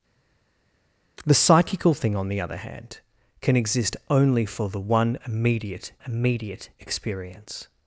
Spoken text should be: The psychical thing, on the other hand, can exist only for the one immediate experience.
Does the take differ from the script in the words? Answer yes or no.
yes